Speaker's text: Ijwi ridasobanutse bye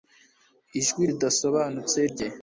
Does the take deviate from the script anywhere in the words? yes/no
no